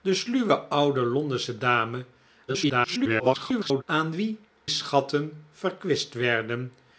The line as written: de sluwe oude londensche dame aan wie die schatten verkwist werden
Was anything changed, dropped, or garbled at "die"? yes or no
yes